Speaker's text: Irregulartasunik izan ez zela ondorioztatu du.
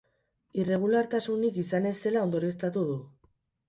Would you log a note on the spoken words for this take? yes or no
no